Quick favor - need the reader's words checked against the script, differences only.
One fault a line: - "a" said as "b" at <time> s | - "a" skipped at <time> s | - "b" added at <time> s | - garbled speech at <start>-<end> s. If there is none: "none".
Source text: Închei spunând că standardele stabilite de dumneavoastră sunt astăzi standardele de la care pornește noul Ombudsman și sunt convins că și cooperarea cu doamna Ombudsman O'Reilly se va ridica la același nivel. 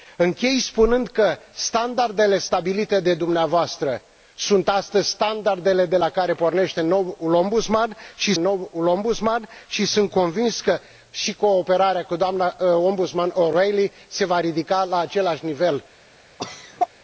- "noul Ombudsman și" added at 8.3 s